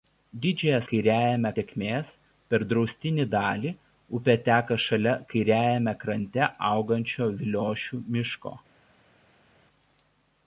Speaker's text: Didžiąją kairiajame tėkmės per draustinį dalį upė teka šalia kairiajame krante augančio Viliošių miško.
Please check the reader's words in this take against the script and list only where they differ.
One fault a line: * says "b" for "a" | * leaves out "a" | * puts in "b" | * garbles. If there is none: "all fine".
all fine